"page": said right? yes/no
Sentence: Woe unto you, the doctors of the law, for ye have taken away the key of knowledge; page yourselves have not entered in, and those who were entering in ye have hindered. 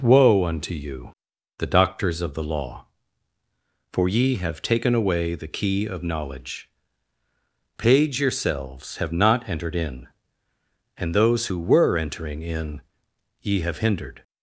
yes